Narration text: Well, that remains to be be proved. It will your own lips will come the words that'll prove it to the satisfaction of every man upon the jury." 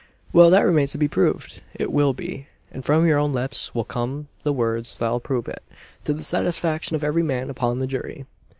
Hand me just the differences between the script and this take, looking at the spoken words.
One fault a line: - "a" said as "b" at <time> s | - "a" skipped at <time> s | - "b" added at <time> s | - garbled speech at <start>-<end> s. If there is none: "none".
- "be" skipped at 1.1 s
- "be and from" added at 2.1 s